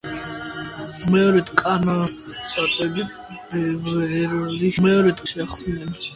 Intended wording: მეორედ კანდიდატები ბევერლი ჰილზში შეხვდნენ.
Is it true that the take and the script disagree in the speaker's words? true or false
true